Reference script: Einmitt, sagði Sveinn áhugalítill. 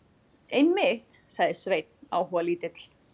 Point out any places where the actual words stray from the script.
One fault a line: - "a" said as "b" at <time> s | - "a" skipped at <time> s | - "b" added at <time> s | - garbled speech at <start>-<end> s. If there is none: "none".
none